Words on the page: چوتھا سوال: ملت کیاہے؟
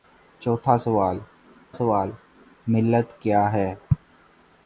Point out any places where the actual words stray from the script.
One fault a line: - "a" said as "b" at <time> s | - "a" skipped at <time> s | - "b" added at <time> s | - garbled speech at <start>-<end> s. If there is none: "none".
- "سوال" added at 1.7 s